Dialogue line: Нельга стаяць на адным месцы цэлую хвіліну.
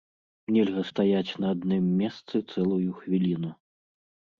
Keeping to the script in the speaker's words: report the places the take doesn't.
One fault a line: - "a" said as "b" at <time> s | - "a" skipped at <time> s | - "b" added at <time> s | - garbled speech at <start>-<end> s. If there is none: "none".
none